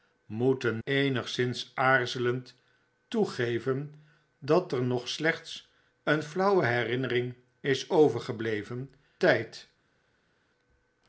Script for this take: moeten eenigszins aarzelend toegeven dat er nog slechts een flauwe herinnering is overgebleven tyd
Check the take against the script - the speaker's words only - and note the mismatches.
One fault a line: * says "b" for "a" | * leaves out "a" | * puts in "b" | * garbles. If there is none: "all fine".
all fine